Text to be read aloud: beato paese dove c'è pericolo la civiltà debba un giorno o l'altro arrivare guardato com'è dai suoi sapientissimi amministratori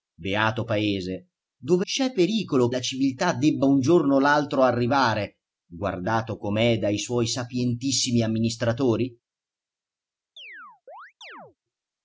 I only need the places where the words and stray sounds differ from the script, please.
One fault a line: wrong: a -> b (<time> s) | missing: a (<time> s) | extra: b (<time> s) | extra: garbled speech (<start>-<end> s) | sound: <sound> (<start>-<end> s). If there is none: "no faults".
sound: chirp (10.4-11.6 s)